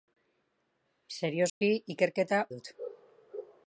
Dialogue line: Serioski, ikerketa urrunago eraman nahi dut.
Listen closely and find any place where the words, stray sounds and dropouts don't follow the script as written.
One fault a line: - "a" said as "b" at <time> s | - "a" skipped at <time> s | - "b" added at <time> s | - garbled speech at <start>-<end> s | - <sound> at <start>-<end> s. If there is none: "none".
- dropout at 1.5-1.6 s
- "urrunago eraman nahi" skipped at 2.4 s